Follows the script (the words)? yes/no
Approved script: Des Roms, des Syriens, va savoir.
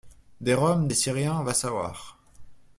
yes